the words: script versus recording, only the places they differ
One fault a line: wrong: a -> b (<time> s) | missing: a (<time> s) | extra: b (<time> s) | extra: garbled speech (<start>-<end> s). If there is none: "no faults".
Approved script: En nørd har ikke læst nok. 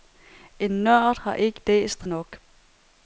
no faults